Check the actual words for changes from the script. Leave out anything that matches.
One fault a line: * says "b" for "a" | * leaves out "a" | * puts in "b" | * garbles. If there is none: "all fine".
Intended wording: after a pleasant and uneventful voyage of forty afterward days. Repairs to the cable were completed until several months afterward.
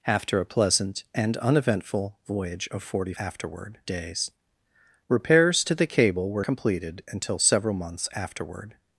all fine